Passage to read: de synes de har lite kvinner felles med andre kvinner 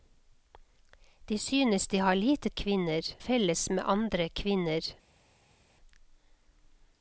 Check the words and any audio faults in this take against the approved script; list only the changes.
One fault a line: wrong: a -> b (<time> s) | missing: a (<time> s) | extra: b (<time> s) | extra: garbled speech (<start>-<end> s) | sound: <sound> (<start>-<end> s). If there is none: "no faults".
no faults